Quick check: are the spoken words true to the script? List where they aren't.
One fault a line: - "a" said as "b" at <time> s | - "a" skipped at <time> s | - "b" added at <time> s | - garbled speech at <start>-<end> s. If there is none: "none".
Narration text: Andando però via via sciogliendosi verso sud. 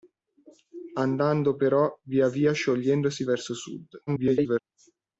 - garbled speech at 4.1-4.6 s